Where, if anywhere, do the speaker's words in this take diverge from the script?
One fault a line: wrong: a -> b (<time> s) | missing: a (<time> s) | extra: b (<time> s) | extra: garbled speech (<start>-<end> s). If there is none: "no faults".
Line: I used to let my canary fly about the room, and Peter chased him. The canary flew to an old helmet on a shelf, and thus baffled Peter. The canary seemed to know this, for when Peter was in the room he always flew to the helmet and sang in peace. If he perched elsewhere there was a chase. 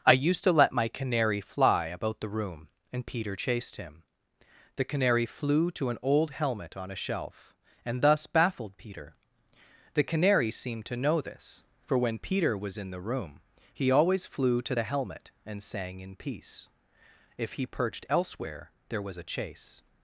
no faults